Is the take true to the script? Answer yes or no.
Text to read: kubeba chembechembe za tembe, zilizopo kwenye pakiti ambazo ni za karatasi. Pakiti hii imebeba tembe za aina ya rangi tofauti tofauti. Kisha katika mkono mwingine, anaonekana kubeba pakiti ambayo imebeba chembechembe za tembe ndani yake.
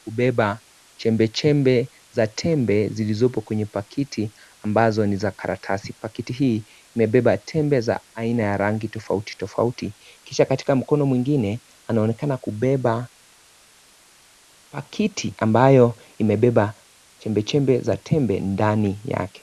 yes